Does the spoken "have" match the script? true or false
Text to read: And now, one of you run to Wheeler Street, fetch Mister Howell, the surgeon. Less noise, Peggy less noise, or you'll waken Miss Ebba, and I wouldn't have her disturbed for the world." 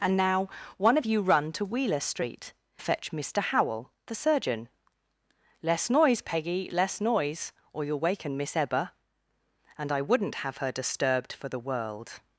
true